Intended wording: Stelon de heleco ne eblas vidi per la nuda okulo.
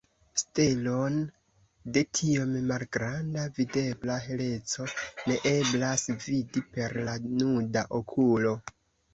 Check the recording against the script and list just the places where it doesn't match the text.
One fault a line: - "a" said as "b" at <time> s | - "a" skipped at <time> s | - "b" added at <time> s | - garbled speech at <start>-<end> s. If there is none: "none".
- "tiom malgranda videbla" added at 2.2 s